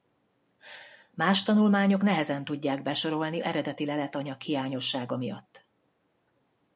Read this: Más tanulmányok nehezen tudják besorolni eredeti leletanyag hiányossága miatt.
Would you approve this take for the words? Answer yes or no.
yes